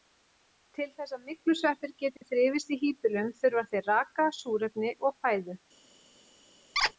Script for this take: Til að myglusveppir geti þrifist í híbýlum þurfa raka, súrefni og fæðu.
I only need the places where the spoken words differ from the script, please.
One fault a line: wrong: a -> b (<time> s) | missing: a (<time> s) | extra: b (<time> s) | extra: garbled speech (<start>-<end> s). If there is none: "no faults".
extra: þess (0.9 s)
extra: þeir (3.8 s)